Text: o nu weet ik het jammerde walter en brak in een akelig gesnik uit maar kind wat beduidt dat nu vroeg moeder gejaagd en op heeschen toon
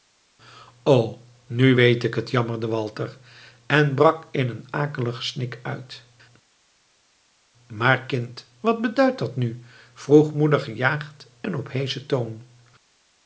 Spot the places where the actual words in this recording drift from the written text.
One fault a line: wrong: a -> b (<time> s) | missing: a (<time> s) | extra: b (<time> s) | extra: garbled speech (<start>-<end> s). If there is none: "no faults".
no faults